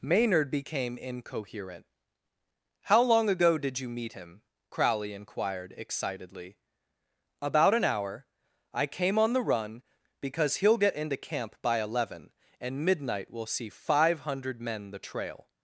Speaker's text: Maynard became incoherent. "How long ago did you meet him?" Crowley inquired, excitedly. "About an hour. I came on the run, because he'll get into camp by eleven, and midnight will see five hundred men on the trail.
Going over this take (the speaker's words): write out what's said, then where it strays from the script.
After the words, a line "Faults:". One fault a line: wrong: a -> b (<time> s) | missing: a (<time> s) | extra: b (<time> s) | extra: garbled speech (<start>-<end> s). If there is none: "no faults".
Maynard became incoherent. "How long ago did you meet him?" Crowley inquired, excitedly. "About an hour. I came on the run, because he'll get into camp by eleven, and midnight will see five hundred men the trail.
Faults:
missing: on (14.9 s)